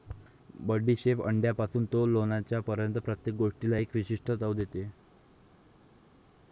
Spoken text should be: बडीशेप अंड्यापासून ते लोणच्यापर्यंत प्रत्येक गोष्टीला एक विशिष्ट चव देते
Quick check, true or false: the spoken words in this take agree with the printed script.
true